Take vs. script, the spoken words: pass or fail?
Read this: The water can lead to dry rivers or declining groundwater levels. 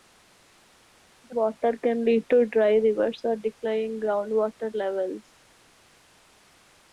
pass